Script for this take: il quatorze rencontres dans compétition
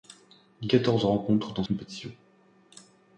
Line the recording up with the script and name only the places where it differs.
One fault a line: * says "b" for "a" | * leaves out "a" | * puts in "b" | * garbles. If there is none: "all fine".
all fine